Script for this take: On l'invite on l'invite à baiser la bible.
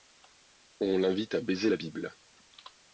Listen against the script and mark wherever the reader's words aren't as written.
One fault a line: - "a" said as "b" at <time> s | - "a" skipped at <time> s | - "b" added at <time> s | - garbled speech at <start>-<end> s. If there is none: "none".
- "on l'invite" skipped at 1.4 s